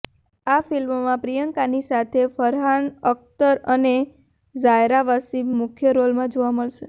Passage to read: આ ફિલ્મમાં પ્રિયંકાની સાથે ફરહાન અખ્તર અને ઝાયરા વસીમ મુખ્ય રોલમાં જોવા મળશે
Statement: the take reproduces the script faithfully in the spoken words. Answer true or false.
true